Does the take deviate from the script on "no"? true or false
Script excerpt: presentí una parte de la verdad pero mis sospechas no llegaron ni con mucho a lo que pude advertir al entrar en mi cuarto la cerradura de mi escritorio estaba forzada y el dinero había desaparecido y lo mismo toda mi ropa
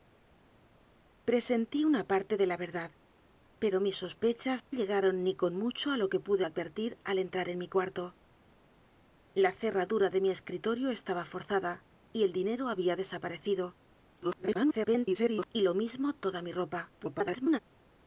true